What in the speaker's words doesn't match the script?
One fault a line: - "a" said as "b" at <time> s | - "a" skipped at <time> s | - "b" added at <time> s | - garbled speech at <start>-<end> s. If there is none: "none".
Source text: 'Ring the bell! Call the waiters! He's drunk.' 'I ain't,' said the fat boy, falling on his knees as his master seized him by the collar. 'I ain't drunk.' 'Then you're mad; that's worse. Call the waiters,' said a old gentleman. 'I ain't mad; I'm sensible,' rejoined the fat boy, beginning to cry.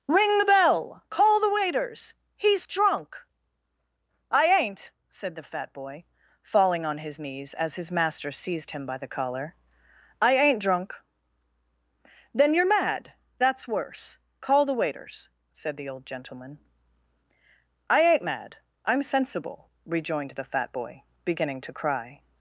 - "a" said as "the" at 15.7 s